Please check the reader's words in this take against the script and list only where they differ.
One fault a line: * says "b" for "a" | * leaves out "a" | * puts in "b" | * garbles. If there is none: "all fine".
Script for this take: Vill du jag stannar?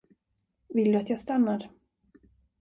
* puts in "att"